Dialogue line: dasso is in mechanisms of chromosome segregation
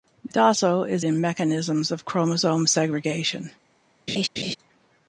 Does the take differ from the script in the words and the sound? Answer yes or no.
yes